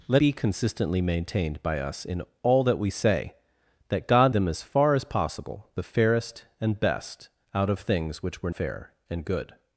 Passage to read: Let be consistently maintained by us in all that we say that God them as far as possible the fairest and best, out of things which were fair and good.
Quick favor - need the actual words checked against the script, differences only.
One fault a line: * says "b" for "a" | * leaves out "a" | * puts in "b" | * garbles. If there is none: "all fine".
all fine